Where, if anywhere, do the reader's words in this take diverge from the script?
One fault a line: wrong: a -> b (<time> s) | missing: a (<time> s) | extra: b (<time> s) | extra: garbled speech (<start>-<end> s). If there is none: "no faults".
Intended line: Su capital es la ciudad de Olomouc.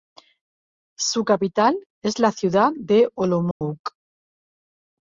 no faults